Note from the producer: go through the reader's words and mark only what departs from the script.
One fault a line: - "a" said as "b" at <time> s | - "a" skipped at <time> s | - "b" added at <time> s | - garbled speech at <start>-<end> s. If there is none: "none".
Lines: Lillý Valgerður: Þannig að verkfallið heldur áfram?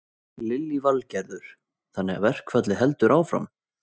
none